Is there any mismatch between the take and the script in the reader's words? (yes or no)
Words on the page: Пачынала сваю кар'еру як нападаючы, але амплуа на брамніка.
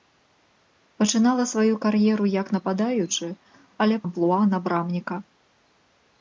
no